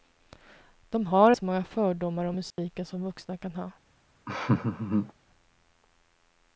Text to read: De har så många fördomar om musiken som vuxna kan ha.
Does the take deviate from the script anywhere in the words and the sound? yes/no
yes